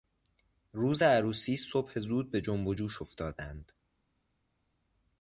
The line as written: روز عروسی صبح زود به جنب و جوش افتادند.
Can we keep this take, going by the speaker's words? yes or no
yes